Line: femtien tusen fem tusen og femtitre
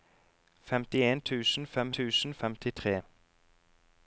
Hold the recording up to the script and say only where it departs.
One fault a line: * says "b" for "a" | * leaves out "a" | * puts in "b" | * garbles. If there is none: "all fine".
all fine